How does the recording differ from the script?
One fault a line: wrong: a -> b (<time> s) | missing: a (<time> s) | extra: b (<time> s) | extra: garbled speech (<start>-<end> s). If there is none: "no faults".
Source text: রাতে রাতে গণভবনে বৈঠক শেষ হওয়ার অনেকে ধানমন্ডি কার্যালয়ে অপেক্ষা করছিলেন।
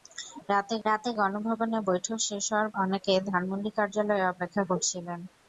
no faults